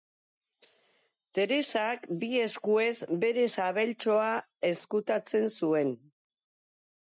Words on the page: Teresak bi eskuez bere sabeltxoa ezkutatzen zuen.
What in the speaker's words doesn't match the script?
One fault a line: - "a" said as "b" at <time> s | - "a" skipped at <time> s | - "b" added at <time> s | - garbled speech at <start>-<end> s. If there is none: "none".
none